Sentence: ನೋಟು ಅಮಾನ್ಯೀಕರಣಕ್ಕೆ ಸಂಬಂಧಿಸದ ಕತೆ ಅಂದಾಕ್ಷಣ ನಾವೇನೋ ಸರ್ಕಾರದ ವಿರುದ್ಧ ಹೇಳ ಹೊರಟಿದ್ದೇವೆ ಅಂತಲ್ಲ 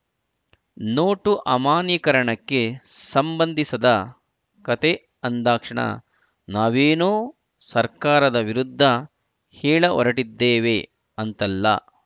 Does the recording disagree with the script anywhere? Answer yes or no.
no